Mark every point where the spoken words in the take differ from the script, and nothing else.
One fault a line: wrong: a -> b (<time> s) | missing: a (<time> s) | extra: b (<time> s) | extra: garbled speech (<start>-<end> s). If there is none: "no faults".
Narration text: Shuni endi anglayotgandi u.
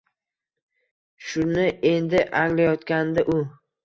no faults